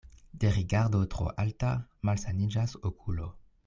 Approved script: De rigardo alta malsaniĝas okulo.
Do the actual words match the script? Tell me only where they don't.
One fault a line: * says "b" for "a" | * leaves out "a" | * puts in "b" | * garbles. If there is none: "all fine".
* puts in "tro"